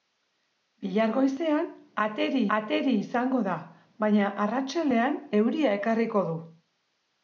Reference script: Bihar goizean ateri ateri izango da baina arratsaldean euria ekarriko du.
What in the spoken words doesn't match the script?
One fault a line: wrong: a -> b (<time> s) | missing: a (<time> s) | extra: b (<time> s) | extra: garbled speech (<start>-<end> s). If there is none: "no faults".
no faults